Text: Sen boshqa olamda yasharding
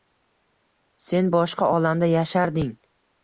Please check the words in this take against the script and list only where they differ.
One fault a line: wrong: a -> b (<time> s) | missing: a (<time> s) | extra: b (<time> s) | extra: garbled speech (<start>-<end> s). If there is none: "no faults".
no faults